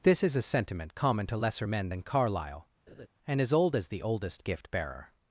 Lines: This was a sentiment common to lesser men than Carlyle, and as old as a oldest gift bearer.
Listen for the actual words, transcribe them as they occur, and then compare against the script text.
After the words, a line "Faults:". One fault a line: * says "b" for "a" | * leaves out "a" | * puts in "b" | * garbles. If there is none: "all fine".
This is a sentiment common to lesser men than Carlyle, and as old as the oldest gift bearer.
Faults:
* says "is" for "was"
* says "the" for "a"